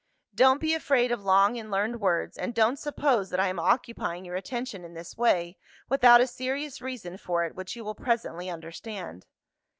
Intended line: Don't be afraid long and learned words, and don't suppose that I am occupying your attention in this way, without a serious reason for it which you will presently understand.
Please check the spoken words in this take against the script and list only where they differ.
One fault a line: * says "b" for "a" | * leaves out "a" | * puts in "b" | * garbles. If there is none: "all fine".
* puts in "of"